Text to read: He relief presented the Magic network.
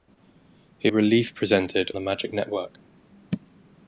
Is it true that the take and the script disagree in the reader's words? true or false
false